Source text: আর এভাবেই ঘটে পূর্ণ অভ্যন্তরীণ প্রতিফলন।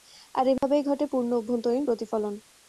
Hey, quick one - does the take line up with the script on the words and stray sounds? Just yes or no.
no